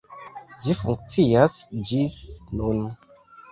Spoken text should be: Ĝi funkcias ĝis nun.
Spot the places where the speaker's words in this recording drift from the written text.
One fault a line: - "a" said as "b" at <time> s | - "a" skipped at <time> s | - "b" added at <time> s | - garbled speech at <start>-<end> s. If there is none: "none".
none